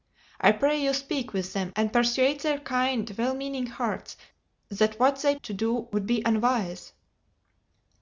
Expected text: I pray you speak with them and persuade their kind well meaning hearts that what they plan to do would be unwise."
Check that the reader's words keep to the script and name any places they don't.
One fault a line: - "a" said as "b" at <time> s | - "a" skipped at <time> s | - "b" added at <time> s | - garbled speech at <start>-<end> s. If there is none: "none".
- "plan" skipped at 5.3 s